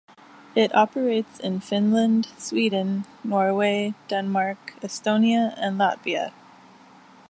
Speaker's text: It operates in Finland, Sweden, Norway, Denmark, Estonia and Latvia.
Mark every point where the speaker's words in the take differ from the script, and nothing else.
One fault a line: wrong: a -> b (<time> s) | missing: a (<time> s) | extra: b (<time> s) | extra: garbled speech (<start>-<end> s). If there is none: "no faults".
no faults